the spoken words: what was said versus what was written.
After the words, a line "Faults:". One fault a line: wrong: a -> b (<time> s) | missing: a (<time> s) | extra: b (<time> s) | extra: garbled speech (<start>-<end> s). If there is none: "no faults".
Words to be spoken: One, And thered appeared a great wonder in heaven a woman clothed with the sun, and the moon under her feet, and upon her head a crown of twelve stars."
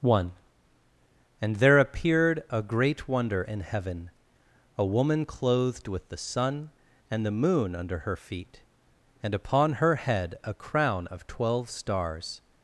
One, And there appeared a great wonder in heaven a woman clothed with the sun, and the moon under her feet, and upon her head a crown of twelve stars."
Faults:
wrong: thered -> there (1.6 s)